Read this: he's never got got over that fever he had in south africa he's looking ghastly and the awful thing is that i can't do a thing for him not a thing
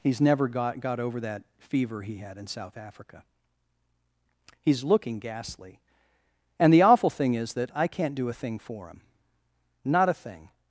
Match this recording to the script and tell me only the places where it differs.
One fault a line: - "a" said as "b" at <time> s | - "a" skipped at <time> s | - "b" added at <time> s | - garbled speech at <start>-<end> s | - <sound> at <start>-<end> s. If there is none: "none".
none